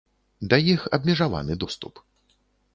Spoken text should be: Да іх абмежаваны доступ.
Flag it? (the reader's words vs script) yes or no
no